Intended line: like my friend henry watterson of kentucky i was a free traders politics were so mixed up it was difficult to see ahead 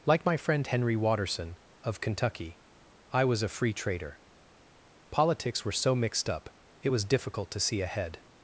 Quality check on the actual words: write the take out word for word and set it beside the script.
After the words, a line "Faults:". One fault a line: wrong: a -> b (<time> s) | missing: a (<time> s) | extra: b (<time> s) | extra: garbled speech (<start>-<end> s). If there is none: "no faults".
like my friend henry watterson of kentucky i was a free trader politics were so mixed up it was difficult to see ahead
Faults:
wrong: traders -> trader (3.7 s)